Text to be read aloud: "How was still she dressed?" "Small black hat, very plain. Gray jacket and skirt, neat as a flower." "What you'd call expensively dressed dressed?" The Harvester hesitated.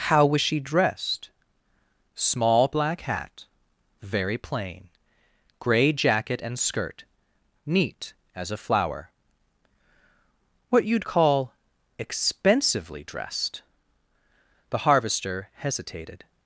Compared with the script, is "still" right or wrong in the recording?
wrong